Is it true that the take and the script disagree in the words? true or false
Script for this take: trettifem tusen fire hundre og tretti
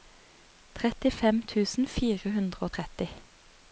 false